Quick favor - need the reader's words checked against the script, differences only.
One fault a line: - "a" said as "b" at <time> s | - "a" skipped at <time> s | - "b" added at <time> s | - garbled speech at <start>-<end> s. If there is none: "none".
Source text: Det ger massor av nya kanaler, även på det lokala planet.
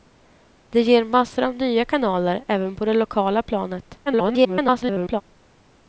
- garbled speech at 4.1-5.2 s